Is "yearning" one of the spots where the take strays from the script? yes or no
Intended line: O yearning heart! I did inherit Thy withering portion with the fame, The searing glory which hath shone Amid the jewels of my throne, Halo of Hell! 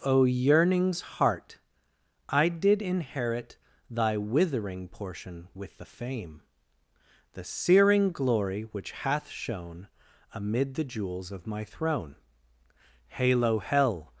yes